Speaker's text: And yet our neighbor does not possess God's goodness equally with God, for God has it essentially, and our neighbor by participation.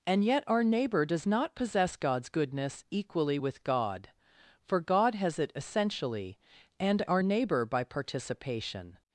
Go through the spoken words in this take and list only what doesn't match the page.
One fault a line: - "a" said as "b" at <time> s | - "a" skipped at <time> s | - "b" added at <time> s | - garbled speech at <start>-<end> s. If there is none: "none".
none